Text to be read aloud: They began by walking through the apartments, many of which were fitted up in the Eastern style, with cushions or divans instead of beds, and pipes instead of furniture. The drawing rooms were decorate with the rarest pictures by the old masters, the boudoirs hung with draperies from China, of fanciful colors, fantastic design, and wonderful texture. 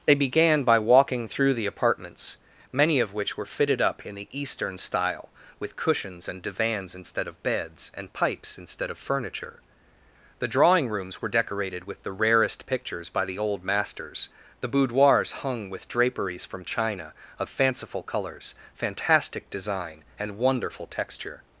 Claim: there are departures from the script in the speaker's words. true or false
true